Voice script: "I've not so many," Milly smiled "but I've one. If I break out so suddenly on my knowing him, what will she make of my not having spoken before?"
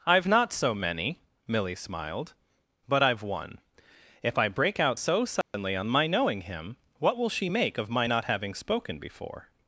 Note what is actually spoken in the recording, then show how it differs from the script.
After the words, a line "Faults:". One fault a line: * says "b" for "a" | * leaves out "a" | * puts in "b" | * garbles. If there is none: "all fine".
"I've not so many," Milly smiled "but I've one. If I break out so suddenly on my knowing him, what will she make of my not having spoken before?"
Faults:
all fine